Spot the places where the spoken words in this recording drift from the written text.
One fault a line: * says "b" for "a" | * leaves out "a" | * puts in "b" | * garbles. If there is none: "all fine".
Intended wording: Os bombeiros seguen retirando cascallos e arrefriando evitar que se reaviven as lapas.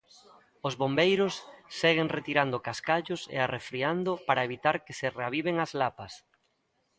* puts in "para"